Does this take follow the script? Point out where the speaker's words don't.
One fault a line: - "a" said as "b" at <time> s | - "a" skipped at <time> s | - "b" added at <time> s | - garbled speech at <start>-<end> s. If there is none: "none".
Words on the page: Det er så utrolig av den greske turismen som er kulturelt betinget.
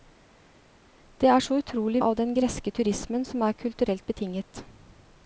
none